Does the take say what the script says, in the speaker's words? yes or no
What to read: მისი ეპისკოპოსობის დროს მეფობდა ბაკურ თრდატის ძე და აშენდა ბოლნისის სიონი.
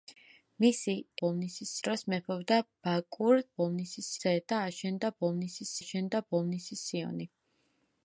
no